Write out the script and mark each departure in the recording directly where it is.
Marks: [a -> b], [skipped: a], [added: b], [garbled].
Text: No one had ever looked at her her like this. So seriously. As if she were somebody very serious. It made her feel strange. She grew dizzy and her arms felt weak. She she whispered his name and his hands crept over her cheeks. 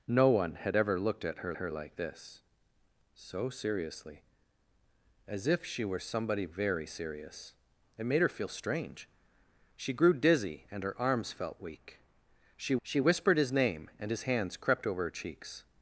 No one had ever looked at her her like this. So seriously. As if she were somebody very serious. It made her feel strange. She grew dizzy and her arms felt weak. She she whispered his name and his hands crept over her cheeks.